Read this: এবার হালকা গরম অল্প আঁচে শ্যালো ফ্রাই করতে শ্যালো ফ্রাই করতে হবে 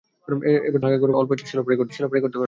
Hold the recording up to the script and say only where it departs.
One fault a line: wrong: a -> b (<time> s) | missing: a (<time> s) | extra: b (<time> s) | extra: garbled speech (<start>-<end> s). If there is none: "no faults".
no faults